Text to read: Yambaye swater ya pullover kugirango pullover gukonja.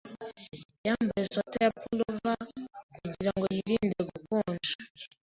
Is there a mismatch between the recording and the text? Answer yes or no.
yes